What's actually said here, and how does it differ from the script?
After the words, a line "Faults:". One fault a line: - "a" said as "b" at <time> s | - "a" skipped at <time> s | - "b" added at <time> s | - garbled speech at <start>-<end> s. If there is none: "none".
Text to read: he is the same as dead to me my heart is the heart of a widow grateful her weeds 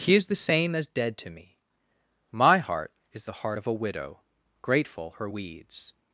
he is the same as dead to me my heart is the heart of a widow grateful her weeds
Faults:
none